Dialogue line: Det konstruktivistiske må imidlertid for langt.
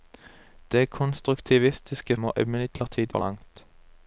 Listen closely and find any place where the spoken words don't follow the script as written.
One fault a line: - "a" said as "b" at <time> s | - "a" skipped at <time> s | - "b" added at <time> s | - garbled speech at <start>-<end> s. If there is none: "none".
none